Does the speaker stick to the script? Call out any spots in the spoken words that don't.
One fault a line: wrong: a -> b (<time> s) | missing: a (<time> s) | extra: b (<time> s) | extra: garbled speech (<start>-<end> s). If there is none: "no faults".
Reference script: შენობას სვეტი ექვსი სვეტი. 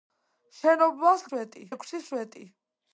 no faults